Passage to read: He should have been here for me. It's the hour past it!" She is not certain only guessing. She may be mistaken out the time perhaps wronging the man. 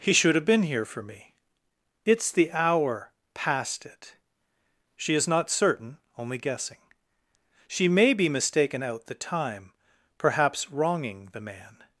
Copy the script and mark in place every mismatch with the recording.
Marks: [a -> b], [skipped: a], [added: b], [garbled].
He should have been here for me. It's the hour past it!" She is not certain only guessing. She may be mistaken out the time perhaps wronging the man.